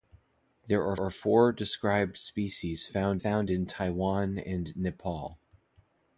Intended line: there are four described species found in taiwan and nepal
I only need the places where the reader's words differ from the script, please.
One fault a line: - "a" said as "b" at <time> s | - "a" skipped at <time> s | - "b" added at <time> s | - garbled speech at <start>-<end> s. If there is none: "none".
- "are" added at 1.0 s
- "found" added at 3.2 s